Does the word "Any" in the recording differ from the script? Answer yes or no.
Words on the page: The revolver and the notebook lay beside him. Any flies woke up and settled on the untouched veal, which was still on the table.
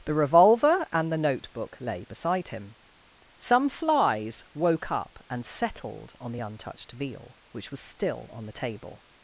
yes